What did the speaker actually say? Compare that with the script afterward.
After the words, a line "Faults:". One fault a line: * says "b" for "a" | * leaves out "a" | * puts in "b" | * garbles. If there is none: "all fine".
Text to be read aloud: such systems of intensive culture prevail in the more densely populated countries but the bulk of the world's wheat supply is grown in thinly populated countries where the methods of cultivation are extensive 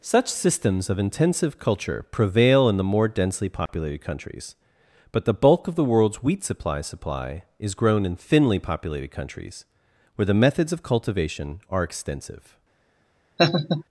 such systems of intensive culture prevail in the more densely populated countries but the bulk of the world's wheat supply supply is grown in thinly populated countries where the methods of cultivation are extensive
Faults:
* puts in "supply"